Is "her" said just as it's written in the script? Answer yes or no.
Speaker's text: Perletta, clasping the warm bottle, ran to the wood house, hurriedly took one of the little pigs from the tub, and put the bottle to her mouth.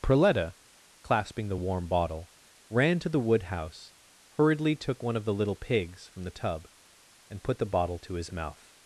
no